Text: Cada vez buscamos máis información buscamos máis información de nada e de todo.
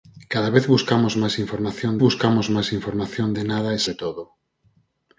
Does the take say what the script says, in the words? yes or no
yes